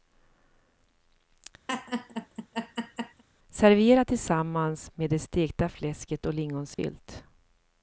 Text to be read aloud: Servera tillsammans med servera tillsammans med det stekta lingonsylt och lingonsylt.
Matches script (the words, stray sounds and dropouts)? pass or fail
fail